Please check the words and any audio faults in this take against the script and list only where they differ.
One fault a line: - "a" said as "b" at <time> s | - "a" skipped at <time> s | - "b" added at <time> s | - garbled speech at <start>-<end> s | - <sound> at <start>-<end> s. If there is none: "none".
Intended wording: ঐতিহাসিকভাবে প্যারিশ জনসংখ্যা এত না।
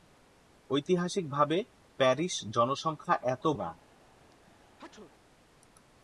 - sneeze at 4.2-5.1 s